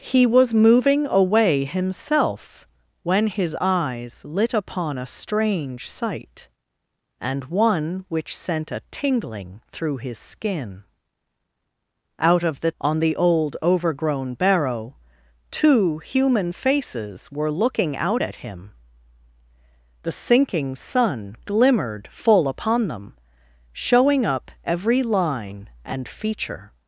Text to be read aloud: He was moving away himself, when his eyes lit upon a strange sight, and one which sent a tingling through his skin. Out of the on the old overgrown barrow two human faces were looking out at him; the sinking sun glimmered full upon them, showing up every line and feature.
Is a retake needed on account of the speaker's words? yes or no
no